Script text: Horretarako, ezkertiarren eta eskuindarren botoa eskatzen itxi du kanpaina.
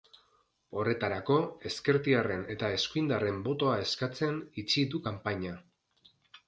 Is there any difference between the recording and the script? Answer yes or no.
no